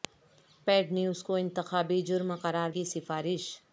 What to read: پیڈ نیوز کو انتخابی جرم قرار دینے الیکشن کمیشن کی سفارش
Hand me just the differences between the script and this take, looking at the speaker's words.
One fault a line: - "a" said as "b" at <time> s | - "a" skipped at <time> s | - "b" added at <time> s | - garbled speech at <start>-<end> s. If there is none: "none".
- "دینے الیکشن کمیشن" skipped at 2.7 s